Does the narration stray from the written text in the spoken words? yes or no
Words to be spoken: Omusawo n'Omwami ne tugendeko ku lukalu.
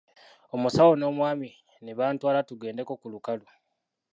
yes